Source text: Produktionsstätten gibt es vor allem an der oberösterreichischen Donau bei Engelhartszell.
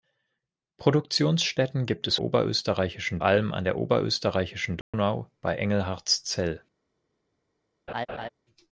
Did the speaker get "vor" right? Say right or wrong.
wrong